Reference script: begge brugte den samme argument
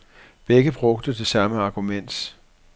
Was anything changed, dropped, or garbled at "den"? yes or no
yes